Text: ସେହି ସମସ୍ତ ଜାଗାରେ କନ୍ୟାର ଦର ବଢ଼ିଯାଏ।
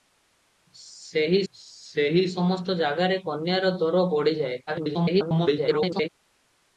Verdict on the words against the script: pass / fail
fail